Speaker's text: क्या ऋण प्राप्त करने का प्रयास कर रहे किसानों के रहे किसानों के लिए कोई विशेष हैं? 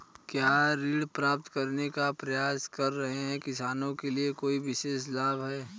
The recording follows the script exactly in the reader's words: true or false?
false